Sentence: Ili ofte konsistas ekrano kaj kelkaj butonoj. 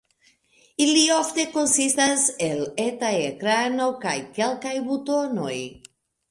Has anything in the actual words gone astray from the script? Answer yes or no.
yes